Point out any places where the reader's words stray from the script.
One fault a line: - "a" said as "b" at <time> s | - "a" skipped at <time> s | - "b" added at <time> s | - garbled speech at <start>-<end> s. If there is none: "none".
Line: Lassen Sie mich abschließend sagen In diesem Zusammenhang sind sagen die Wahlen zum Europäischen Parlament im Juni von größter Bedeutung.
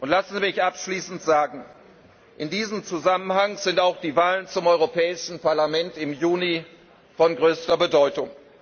- "sagen" said as "auch" at 3.8 s